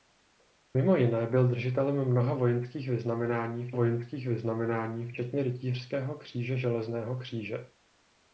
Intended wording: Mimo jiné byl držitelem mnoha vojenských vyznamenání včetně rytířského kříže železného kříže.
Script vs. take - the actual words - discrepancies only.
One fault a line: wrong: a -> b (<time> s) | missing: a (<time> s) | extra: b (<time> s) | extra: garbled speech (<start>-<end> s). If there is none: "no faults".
extra: vojenských vyznamenání (3.7 s)